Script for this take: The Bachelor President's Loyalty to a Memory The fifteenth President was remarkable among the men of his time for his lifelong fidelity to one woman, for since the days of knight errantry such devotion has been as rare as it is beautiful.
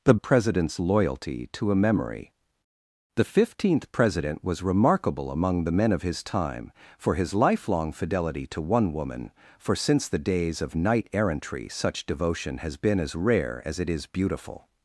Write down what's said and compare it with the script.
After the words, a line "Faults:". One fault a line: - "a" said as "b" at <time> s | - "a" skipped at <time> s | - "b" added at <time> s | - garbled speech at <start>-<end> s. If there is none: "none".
The President's Loyalty to a Memory The fifteenth President was remarkable among the men of his time for his lifelong fidelity to one woman, for since the days of knight errantry such devotion has been as rare as it is beautiful.
Faults:
- "Bachelor" skipped at 0.1 s